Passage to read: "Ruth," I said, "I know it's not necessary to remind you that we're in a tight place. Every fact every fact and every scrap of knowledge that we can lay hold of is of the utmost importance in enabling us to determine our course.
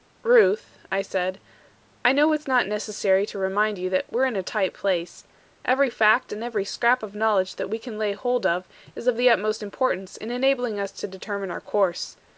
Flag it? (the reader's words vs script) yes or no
yes